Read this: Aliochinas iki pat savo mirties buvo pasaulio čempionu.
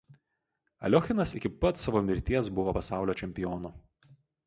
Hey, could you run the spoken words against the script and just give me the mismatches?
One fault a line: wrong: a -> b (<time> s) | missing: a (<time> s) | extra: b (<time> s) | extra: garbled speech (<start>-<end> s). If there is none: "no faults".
no faults